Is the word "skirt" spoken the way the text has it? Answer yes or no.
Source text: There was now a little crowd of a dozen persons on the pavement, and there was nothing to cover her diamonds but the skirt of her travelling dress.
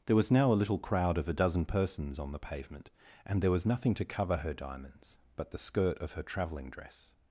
yes